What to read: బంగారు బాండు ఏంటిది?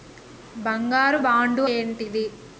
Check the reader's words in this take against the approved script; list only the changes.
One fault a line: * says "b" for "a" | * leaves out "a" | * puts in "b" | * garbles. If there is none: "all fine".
all fine